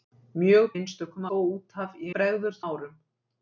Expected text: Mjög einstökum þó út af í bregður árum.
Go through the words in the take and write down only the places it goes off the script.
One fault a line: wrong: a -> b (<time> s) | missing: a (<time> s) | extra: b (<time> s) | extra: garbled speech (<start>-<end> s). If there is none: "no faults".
no faults